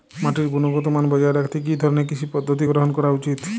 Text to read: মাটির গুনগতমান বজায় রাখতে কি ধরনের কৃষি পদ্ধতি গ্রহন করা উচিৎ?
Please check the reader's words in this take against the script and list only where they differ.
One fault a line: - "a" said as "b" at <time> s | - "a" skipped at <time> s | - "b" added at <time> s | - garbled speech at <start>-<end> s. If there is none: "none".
none